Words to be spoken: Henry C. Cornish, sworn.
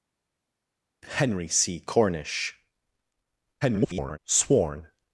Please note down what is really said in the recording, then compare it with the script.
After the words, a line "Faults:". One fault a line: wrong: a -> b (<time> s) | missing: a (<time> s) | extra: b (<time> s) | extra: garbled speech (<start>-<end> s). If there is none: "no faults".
Henry C. Cornish, [garbled] sworn.
Faults:
extra: garbled speech (3.6-4.2 s)